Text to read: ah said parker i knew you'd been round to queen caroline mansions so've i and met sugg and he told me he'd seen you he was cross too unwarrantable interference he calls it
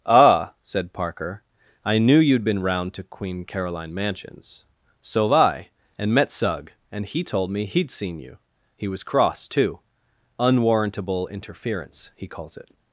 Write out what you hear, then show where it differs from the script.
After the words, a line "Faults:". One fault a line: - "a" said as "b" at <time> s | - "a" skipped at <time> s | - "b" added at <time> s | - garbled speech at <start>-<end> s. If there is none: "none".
ah said parker i knew you'd been round to queen caroline mansions so've i and met sugg and he told me he'd seen you he was cross too unwarrantable interference he calls it
Faults:
none